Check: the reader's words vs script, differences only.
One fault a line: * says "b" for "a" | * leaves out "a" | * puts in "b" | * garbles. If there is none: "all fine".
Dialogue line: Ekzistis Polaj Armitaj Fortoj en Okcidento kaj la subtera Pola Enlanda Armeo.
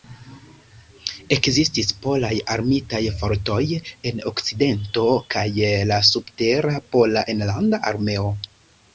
all fine